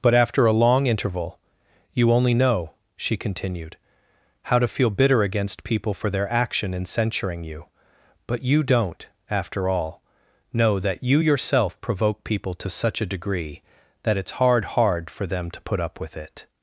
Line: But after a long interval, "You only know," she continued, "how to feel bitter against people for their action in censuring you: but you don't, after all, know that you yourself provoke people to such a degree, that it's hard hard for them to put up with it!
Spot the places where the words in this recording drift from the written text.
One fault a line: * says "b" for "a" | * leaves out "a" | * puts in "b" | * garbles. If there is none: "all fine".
all fine